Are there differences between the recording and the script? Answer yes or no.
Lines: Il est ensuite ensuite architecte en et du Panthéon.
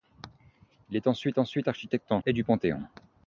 no